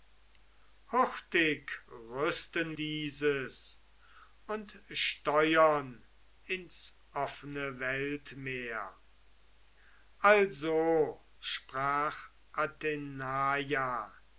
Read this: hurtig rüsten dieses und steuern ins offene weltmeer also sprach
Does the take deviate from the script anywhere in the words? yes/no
no